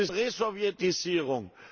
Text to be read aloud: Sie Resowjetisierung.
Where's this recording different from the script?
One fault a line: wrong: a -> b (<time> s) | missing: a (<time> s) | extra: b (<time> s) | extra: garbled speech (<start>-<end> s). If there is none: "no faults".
no faults